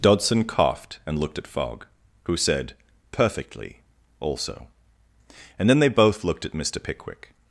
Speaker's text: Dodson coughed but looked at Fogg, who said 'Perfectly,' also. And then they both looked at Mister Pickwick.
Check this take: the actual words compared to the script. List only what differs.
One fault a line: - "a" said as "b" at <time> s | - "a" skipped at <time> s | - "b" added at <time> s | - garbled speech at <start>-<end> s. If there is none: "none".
- "but" said as "and" at 1.1 s